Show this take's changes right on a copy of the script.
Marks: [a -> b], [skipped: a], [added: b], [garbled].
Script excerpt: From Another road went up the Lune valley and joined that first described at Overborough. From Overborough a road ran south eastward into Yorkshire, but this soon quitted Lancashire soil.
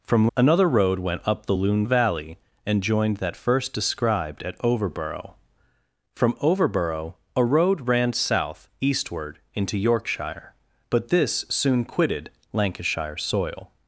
From Another road went up the Lune valley and joined that first described at Overborough. From Overborough a road ran south eastward into Yorkshire, but this soon quitted Lancashire soil.